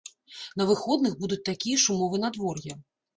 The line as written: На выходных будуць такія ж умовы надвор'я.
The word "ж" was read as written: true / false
true